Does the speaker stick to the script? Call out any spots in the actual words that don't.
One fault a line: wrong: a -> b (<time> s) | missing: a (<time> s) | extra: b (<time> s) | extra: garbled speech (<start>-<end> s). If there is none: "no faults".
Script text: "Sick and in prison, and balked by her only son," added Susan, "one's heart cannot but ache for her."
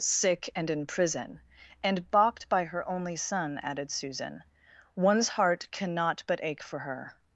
no faults